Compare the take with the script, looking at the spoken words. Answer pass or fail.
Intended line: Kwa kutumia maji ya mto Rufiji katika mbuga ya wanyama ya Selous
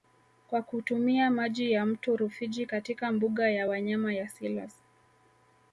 pass